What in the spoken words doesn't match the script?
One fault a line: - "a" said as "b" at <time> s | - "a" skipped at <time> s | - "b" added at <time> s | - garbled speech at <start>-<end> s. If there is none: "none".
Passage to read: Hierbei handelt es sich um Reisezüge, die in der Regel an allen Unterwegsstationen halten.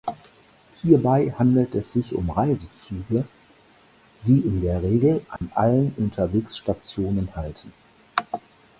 none